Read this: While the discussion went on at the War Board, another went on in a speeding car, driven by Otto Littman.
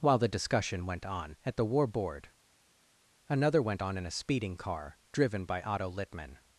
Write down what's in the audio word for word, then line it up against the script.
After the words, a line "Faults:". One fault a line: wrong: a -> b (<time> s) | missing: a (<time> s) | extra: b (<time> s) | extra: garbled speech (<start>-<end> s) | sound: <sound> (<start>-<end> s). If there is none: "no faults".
While the discussion went on at the War Board, another went on in a speeding car, driven by Otto Littman.
Faults:
no faults